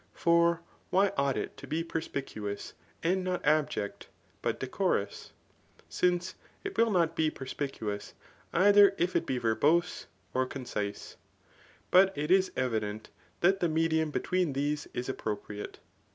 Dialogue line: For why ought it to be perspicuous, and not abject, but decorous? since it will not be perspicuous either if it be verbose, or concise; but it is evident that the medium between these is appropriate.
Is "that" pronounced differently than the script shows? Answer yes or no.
no